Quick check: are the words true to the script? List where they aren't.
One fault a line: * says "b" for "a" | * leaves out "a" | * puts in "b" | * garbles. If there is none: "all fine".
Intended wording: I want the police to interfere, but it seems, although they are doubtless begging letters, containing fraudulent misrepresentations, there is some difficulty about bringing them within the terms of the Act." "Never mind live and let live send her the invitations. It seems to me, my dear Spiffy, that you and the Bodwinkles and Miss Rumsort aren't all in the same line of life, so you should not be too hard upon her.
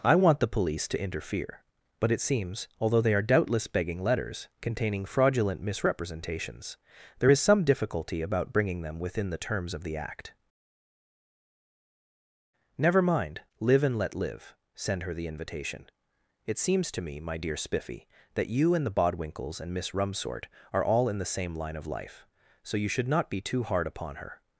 * says "invitation" for "invitations"
* says "are" for "aren't"